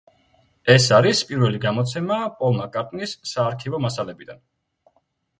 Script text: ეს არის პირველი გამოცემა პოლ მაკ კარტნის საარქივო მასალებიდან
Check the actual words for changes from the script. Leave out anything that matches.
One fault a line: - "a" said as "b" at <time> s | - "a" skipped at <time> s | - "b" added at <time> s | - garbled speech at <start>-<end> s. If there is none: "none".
none